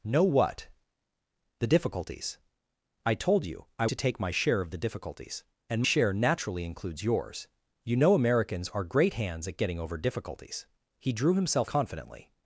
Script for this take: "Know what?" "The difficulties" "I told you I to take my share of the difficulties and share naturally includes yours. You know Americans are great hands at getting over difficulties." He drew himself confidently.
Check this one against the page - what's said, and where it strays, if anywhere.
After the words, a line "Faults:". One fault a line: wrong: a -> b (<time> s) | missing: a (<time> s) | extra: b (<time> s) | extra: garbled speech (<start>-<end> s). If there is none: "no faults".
"Know what?" "The difficulties" "I told you I to take my share of the difficulties and share naturally includes yours. You know Americans are great hands at getting over difficulties." He drew himself confidently.
Faults:
no faults